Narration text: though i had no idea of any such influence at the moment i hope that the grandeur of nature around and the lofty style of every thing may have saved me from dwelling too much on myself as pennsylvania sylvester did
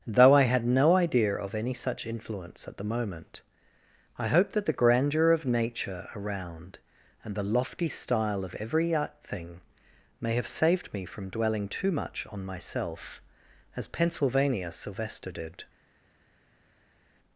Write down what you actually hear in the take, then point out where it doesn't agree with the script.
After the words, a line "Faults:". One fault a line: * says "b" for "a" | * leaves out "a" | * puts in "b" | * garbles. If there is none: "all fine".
though i had no idea of any such influence at the moment i hope that the grandeur of nature around and the lofty style of every thing may have saved me from dwelling too much on myself as pennsylvania sylvester did
Faults:
all fine